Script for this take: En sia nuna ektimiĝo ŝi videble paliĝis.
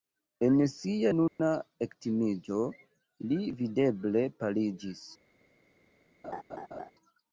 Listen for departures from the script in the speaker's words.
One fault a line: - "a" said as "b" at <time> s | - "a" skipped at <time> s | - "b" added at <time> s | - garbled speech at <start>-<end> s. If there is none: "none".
- "ŝi" said as "li" at 3.3 s